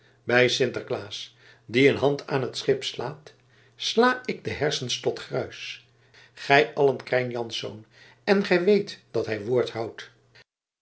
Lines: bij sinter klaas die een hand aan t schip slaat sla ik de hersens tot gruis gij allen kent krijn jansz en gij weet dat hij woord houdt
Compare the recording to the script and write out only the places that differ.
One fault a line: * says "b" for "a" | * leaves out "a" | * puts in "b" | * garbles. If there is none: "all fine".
* leaves out "kent"